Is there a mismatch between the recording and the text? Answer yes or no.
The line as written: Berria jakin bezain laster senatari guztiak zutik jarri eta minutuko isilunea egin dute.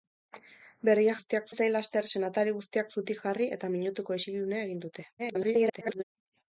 yes